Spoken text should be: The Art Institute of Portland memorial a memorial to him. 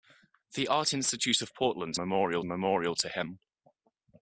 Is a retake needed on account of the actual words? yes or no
no